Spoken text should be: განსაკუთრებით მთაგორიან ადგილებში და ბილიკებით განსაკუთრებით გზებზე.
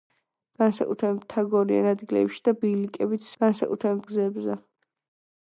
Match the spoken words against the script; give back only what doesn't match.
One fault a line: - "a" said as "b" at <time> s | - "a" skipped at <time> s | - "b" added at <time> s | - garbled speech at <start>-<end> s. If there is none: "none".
none